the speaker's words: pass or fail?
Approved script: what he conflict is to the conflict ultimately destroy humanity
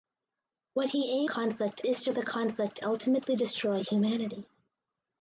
pass